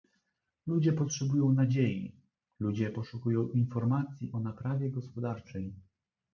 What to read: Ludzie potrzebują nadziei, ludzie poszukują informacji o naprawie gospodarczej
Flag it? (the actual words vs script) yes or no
no